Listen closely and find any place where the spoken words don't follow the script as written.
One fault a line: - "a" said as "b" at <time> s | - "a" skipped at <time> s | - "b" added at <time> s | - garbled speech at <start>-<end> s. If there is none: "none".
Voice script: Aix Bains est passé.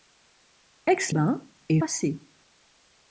none